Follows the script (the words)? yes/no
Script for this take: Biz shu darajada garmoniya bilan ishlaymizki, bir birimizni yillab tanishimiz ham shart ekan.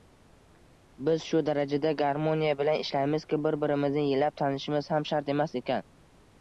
no